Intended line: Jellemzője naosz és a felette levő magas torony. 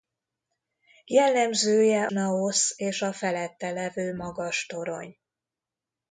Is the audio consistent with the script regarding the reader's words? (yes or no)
yes